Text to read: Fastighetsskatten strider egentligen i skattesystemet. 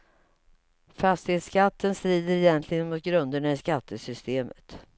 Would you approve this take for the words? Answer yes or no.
no